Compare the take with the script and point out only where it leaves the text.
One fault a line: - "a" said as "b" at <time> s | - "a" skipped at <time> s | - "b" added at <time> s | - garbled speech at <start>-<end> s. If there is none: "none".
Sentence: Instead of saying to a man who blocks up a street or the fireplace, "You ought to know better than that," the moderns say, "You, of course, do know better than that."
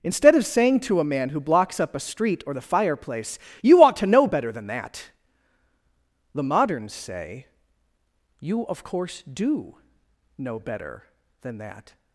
none